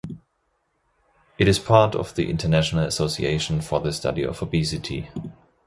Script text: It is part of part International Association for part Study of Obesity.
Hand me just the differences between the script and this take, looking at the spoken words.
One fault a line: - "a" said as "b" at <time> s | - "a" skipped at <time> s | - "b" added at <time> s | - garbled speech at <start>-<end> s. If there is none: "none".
- "part" said as "the" at 2.1 s
- "part" said as "the" at 3.8 s